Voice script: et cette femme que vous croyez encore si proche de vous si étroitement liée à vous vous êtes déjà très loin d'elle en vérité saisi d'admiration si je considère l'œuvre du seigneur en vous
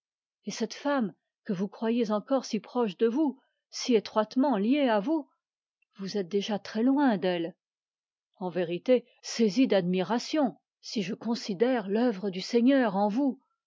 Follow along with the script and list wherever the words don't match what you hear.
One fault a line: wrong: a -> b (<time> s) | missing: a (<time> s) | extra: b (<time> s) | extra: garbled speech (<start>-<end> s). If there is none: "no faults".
no faults